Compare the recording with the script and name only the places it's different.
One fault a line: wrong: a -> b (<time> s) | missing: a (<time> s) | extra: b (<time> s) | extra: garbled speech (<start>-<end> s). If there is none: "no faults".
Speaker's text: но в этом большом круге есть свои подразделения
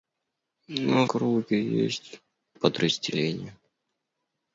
missing: в этом большом (1.1 s)
missing: свои (2.2 s)